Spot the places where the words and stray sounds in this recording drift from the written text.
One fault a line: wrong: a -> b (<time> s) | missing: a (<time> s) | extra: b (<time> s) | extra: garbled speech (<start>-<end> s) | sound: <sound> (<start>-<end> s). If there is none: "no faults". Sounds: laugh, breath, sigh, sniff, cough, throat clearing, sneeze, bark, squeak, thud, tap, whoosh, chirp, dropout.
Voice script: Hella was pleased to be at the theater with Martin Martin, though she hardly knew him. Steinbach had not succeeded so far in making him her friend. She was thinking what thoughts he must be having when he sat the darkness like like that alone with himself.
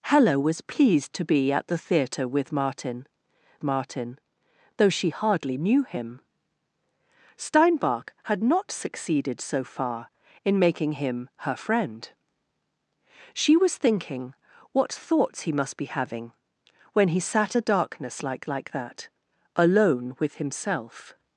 no faults